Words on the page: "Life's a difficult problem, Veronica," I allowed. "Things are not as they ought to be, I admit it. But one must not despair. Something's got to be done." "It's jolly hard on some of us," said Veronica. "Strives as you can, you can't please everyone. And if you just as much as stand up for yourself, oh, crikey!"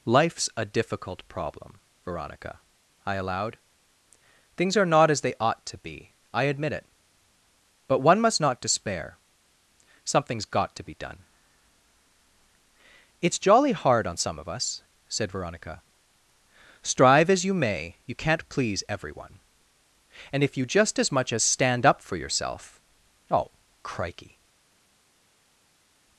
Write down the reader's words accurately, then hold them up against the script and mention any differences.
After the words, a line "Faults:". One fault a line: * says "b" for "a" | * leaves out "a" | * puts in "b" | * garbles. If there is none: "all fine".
"Life's a difficult problem, Veronica," I allowed. "Things are not as they ought to be, I admit it. But one must not despair. Something's got to be done." "It's jolly hard on some of us," said Veronica. "Strive as you may, you can't please everyone. And if you just as much as stand up for yourself, oh, crikey!"
Faults:
* says "Strive" for "Strives"
* says "may" for "can"